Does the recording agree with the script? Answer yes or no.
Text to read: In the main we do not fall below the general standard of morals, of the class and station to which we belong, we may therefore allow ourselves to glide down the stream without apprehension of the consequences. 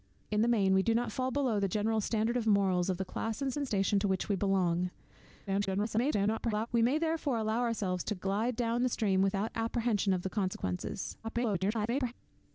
no